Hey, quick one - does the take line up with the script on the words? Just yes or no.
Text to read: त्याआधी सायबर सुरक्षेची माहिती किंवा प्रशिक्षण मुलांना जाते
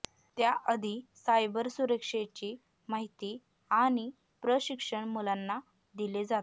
no